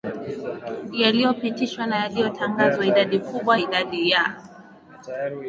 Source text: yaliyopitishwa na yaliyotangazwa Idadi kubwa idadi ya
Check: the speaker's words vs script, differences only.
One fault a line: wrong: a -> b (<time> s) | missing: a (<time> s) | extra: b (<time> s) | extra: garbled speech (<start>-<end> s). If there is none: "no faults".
no faults